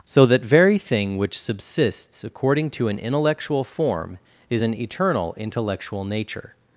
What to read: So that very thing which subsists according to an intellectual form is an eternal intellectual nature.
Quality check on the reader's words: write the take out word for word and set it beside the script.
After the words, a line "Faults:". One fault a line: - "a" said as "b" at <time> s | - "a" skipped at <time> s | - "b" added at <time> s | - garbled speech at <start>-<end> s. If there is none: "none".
So that very thing which subsists according to an intellectual form is an eternal intellectual nature.
Faults:
none